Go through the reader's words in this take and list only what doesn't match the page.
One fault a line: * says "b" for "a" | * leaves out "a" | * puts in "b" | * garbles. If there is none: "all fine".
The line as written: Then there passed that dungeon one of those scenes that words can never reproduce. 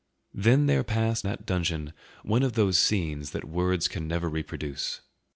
all fine